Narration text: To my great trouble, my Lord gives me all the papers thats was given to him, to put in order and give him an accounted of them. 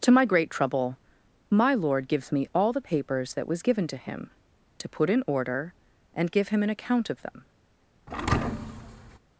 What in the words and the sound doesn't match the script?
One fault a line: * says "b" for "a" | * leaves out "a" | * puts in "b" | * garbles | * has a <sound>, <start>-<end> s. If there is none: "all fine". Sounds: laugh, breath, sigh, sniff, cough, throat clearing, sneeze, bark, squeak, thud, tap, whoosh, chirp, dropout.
* says "that" for "thats"
* says "account" for "accounted"
* has a thud, 8.1-9.2 s